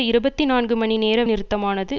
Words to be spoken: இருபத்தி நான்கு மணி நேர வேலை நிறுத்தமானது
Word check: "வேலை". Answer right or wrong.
wrong